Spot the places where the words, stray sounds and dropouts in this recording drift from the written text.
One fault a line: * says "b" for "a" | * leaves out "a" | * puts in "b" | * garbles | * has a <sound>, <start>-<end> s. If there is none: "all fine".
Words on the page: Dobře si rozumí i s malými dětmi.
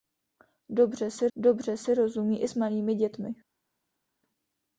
* puts in "dobře si"